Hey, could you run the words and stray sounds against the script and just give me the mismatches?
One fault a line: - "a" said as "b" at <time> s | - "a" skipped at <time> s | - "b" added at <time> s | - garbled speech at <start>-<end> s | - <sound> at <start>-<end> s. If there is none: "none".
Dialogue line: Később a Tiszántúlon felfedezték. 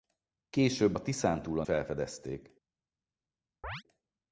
- chirp at 3.6-3.8 s